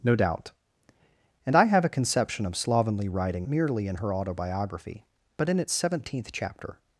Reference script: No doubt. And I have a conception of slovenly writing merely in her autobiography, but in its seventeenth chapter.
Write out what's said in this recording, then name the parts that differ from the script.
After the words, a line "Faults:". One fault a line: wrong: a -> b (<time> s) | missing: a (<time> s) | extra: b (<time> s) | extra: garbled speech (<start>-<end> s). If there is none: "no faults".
No doubt. And I have a conception of slovenly writing merely in her autobiography, but in its seventeenth chapter.
Faults:
no faults